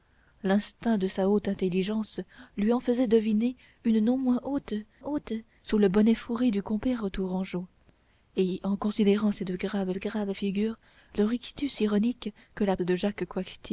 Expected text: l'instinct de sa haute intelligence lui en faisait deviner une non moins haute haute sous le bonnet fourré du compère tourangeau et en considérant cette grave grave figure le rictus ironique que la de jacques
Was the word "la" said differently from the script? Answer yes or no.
no